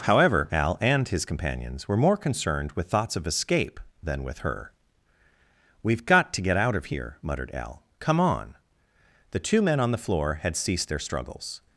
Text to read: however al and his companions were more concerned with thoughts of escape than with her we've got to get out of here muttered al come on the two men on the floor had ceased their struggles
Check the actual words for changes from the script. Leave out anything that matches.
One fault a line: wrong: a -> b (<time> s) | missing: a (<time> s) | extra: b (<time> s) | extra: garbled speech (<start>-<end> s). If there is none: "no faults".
no faults